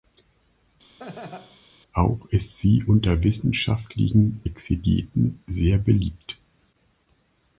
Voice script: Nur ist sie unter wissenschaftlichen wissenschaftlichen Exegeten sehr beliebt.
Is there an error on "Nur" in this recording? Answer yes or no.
yes